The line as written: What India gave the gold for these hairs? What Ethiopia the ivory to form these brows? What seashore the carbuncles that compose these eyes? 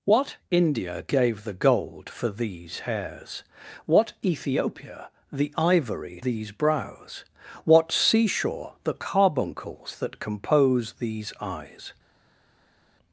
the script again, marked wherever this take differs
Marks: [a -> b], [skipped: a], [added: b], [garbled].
What India gave the gold for these hairs? What Ethiopia the ivory [skipped: to form] these brows? What seashore the carbuncles that compose these eyes?